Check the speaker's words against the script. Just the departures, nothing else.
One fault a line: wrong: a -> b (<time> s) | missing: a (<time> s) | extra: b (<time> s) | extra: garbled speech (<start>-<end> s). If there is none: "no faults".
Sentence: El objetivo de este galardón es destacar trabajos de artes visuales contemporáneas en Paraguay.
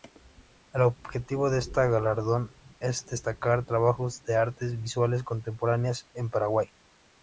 no faults